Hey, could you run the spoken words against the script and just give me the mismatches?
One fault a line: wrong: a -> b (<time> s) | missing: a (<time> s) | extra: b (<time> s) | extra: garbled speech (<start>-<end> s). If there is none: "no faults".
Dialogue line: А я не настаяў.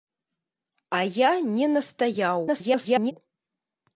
extra: garbled speech (2.5-3.1 s)